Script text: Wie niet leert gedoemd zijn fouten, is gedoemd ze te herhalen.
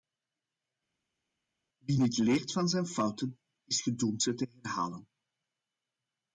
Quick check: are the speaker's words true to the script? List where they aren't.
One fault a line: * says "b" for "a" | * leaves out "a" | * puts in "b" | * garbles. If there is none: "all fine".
* says "van" for "gedoemd"